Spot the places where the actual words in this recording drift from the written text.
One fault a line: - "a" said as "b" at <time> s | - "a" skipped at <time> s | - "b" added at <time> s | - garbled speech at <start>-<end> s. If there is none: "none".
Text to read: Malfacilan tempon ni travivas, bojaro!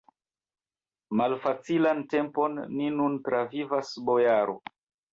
- "nun" added at 3.0 s